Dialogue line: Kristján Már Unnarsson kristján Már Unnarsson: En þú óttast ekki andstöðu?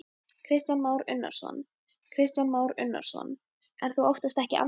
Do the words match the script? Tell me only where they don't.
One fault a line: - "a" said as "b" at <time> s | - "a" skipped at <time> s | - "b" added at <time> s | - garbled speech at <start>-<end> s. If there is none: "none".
none